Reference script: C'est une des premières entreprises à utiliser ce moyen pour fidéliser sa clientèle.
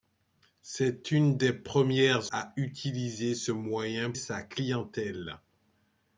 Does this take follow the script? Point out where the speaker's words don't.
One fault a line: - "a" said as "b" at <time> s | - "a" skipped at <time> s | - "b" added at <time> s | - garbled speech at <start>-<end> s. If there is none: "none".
- "entreprises" skipped at 2.3 s
- "pour fidéliser" skipped at 4.1 s